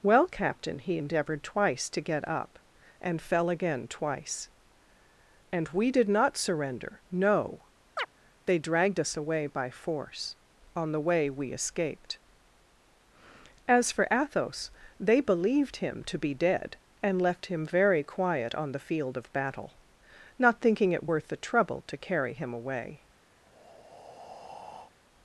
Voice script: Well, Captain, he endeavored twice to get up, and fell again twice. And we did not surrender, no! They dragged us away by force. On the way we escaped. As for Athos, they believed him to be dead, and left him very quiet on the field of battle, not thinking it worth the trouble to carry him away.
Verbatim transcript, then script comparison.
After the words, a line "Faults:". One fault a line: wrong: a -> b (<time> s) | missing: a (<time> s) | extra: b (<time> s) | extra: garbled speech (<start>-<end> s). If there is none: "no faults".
Well, Captain, he endeavored twice to get up, and fell again twice. And we did not surrender, no! They dragged us away by force. On the way we escaped. As for Athos, they believed him to be dead, and left him very quiet on the field of battle, not thinking it worth the trouble to carry him away.
Faults:
no faults